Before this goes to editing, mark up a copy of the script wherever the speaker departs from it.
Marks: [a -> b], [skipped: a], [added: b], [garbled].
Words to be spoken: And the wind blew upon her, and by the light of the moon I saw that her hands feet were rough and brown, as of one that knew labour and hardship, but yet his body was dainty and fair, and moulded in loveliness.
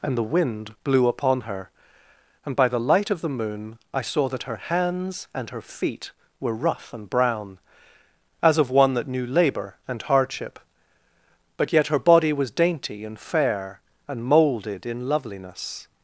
And the wind blew upon her, and by the light of the moon I saw that her hands [added: and her] feet were rough and brown, as of one that knew labour and hardship, but yet [his -> her] body was dainty and fair, and moulded in loveliness.